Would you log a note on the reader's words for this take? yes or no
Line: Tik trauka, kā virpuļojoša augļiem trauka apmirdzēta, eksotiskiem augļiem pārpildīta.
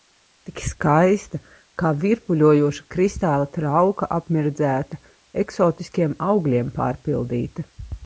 yes